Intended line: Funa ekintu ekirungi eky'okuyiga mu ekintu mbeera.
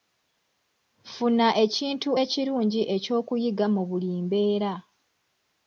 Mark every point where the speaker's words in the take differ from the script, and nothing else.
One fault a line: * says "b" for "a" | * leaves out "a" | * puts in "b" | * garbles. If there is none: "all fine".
* says "buli" for "ekintu"